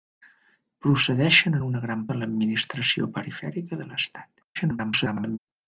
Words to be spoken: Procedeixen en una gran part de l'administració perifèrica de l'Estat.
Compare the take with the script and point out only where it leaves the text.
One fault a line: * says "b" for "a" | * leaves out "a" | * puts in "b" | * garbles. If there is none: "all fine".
* leaves out "part"
* garbles